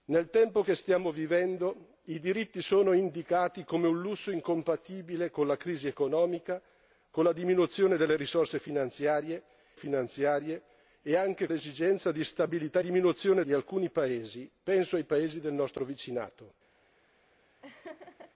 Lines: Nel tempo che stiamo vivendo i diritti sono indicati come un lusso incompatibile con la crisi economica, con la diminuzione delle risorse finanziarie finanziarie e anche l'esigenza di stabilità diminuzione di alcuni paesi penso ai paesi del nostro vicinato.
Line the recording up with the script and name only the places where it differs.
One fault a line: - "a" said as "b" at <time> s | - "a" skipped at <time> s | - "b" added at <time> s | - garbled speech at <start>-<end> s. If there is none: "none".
none